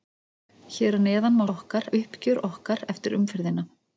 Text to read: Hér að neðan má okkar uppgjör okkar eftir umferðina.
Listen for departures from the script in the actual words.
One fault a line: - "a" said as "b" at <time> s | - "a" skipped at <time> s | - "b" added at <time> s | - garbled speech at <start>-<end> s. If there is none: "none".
none